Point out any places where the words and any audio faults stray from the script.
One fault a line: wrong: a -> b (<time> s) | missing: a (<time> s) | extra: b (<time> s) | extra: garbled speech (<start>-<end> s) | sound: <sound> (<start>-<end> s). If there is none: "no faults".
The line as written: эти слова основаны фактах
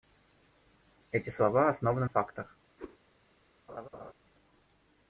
sound: whoosh (2.8-3.0 s)
sound: laugh (3.7-4.1 s)